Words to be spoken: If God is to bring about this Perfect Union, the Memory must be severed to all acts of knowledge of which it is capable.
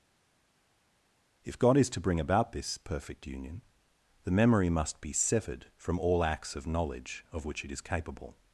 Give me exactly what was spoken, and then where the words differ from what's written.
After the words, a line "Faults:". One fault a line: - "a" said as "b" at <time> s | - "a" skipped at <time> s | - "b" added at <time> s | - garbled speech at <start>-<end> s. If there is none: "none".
If God is to bring about this Perfect Union, the Memory must be severed from all acts of knowledge of which it is capable.
Faults:
- "to" said as "from" at 5.8 s